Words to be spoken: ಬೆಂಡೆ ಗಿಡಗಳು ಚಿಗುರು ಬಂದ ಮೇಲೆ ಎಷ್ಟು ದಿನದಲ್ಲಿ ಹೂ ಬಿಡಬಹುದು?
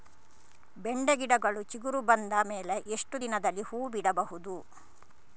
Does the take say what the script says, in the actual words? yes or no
yes